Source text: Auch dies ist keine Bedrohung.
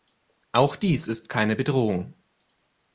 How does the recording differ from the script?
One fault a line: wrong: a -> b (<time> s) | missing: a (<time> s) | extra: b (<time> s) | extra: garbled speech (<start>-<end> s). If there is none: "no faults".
no faults